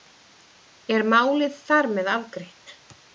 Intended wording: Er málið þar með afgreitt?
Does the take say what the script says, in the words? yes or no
yes